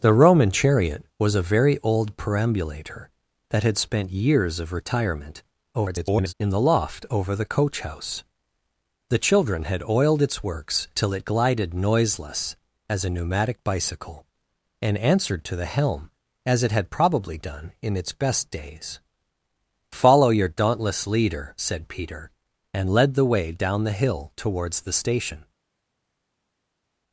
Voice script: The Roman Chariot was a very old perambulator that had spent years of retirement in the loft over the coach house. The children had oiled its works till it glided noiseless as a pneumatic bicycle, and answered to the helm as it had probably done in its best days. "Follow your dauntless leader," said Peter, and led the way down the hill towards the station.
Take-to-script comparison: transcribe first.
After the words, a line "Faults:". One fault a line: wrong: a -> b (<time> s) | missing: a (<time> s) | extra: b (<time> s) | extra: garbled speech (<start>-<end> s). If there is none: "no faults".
The Roman Chariot was a very old perambulator that had spent years of retirement [garbled] in the loft over the coach house. The children had oiled its works till it glided noiseless as a pneumatic bicycle, and answered to the helm as it had probably done in its best days. "Follow your dauntless leader," said Peter, and led the way down the hill towards the station.
Faults:
extra: garbled speech (5.7-6.3 s)